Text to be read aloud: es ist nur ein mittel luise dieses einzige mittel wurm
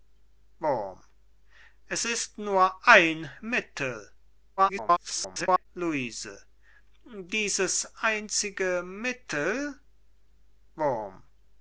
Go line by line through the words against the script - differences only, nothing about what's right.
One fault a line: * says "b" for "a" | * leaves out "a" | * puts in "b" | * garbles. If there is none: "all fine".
* garbles